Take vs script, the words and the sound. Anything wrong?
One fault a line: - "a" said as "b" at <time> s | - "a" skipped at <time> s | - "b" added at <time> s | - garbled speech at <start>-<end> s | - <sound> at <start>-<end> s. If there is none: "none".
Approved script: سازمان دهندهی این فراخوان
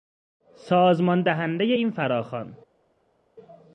none